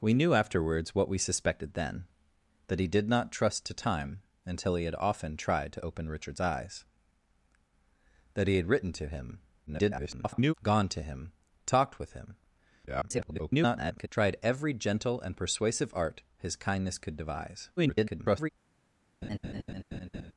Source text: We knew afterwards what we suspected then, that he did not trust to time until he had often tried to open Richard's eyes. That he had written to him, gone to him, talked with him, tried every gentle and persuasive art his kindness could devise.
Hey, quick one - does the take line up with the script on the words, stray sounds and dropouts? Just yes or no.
no